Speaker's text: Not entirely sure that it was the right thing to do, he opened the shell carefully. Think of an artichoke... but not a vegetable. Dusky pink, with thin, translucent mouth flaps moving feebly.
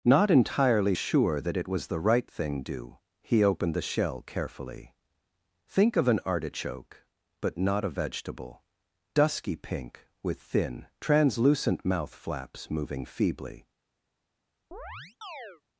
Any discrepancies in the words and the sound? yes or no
yes